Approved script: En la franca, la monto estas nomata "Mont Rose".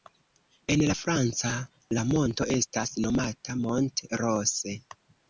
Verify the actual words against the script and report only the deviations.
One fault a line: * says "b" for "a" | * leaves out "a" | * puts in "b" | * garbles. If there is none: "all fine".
all fine